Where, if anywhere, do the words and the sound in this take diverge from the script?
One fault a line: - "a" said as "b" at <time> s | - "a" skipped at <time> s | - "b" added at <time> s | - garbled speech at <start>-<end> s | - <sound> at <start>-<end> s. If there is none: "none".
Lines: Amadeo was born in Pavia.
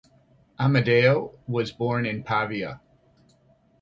none